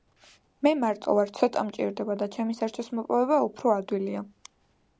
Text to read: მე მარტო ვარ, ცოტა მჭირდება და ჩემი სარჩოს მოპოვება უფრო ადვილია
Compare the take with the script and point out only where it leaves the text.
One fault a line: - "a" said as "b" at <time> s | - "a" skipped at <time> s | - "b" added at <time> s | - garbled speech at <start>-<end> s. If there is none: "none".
none